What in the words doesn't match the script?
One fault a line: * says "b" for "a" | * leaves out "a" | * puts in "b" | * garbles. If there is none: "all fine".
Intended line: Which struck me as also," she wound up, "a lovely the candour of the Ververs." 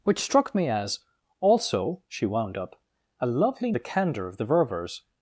all fine